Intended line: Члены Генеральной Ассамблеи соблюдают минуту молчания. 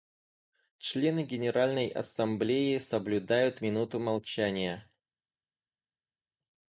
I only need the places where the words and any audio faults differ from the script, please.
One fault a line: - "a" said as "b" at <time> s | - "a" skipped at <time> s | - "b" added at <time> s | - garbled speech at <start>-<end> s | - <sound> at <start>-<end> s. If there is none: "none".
none